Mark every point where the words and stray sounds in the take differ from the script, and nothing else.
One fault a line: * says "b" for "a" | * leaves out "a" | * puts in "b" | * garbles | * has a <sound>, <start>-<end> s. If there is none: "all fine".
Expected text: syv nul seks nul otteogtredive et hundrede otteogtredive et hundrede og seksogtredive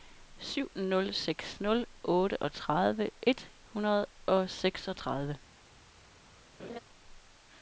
* leaves out "otteogtredive et hundrede"
* has a laugh, 6.6-6.8 s